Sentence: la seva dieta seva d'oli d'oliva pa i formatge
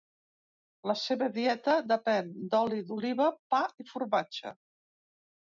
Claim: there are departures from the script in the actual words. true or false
true